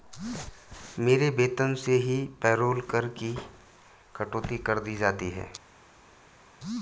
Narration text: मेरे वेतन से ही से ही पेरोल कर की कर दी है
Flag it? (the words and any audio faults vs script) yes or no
yes